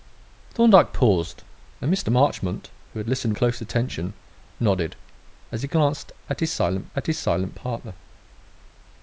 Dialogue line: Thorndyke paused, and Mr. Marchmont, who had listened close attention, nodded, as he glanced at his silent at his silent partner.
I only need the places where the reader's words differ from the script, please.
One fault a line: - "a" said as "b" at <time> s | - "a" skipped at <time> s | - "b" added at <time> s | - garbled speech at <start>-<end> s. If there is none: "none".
none